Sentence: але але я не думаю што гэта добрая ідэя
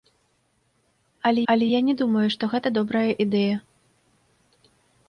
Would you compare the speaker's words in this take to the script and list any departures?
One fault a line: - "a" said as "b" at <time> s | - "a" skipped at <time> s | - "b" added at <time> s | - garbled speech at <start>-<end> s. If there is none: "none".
none